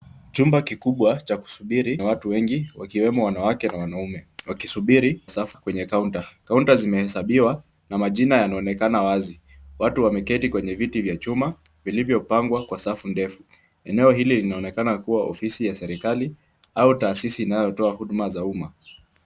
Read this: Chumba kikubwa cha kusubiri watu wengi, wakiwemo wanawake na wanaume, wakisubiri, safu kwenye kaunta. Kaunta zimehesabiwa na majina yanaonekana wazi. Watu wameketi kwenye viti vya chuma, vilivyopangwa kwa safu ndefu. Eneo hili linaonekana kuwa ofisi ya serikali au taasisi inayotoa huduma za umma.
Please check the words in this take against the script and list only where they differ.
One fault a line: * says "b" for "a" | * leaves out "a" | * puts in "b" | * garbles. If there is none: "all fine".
all fine